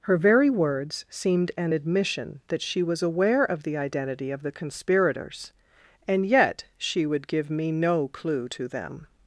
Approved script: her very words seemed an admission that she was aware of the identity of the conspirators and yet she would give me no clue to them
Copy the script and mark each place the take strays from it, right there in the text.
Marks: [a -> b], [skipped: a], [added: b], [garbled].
her very words seemed an admission that she was aware of the identity of the conspirators and yet she would give me no clue to them